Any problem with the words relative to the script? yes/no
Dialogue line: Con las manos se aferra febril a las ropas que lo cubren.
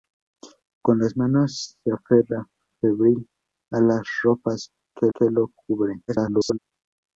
yes